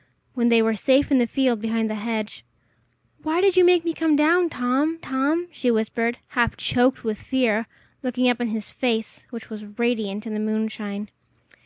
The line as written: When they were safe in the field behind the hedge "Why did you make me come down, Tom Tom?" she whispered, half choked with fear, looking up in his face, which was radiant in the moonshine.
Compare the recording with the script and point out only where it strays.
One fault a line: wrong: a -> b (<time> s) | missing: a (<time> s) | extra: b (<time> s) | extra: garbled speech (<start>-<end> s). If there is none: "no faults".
no faults